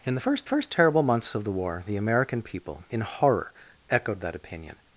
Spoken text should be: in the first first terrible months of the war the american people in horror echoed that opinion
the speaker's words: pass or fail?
pass